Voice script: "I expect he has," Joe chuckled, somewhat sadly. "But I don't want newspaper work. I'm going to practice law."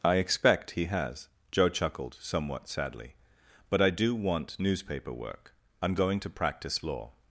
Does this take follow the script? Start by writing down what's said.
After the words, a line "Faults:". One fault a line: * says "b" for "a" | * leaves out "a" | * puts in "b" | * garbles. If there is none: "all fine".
"I expect he has," Joe chuckled, somewhat sadly. "But I do want newspaper work. I'm going to practice law."
Faults:
* says "do" for "don't"